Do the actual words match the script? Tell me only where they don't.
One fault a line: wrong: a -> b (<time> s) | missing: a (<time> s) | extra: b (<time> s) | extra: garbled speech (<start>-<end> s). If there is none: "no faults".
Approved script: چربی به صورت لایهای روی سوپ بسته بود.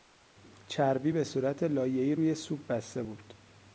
no faults